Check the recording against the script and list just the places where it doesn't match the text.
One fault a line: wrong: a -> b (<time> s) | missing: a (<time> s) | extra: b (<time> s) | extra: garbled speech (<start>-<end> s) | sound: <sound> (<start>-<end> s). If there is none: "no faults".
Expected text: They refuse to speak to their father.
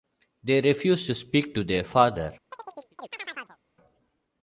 sound: chirp (2.5-3.6 s)